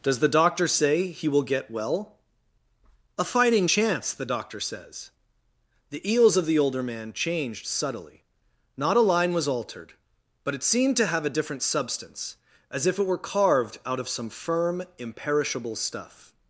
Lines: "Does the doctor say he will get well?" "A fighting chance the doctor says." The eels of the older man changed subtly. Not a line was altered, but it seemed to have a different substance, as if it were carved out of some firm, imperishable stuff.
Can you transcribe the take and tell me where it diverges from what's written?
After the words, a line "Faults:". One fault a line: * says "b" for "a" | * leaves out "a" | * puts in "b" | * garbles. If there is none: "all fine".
"Does the doctor say he will get well?" "A fighting chance the doctor says." The eels of the older man changed subtly. Not a line was altered, but it seemed to have a different substance, as if it were carved out of some firm, imperishable stuff.
Faults:
all fine